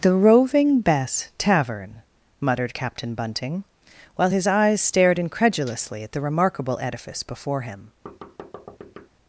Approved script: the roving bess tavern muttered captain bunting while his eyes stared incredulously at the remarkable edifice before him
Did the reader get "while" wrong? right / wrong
right